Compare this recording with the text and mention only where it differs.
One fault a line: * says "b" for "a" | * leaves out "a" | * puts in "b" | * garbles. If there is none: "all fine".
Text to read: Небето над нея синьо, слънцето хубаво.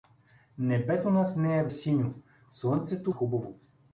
all fine